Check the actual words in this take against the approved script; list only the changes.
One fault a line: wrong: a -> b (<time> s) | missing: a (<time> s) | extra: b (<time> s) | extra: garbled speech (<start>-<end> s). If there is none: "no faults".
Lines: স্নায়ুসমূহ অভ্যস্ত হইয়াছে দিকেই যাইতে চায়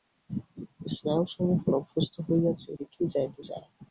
no faults